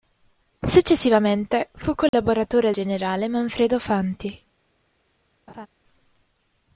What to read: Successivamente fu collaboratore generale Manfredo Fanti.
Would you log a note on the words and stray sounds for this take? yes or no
yes